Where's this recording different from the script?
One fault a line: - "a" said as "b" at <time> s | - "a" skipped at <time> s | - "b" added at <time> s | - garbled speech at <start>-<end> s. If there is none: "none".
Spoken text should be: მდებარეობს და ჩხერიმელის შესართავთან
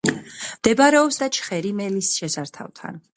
none